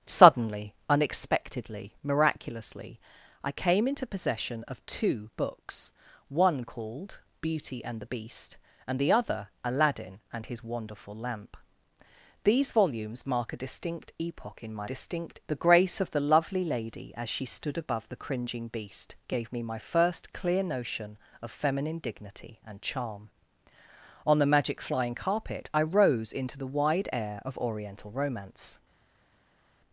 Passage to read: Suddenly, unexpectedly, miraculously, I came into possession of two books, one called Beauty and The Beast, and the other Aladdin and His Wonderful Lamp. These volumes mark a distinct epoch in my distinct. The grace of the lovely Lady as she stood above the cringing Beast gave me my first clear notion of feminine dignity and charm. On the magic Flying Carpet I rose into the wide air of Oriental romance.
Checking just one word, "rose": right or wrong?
right